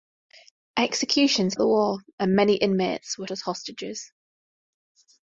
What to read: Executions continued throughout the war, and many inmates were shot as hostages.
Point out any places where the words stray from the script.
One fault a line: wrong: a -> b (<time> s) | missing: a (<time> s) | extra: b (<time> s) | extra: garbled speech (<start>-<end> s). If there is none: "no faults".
missing: continued throughout (1.5 s)
missing: shot (3.3 s)